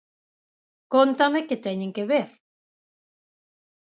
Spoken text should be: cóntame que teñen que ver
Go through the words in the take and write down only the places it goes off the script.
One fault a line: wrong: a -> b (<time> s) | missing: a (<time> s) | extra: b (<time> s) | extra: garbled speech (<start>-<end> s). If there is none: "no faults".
no faults